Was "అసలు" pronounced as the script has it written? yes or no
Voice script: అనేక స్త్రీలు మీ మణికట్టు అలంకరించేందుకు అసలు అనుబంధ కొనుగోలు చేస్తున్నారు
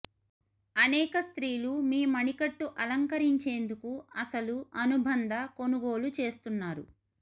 yes